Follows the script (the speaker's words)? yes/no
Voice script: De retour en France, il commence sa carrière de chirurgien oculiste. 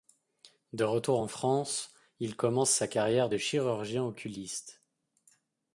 yes